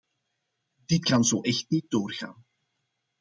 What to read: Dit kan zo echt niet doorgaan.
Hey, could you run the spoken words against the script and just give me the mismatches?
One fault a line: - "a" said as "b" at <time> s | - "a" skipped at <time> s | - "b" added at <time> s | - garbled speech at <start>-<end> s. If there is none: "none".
none